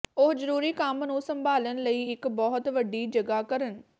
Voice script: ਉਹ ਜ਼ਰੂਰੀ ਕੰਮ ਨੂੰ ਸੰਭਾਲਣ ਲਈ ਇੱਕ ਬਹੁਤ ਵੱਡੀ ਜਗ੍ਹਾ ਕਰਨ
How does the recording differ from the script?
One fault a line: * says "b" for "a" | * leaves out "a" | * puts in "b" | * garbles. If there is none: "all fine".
all fine